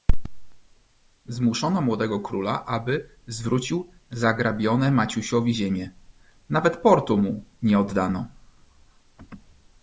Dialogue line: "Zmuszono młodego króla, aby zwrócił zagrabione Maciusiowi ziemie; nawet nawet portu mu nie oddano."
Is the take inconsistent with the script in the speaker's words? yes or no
yes